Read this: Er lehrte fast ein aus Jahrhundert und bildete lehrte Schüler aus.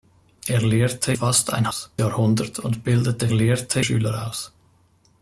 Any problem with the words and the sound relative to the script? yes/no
no